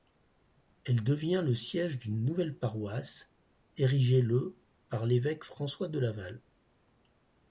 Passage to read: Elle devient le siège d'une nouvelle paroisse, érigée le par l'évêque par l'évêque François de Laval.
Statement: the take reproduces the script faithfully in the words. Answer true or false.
false